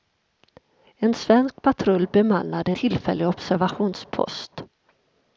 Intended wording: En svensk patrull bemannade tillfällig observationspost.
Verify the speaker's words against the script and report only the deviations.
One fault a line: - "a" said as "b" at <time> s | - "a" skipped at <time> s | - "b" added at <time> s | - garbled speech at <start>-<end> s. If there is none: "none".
none